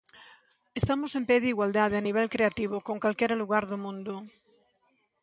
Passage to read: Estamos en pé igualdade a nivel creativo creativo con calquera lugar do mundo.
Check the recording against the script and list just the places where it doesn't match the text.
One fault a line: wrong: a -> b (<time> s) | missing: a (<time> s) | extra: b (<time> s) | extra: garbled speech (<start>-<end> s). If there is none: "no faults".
extra: de (1.4 s)
missing: creativo (2.8 s)